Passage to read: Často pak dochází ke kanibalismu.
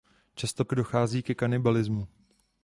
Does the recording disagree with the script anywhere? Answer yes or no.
yes